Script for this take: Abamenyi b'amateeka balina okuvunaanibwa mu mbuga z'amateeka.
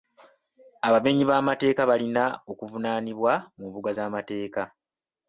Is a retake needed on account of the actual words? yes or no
no